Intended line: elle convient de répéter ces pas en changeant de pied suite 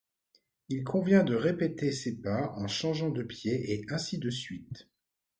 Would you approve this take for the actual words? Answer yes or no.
no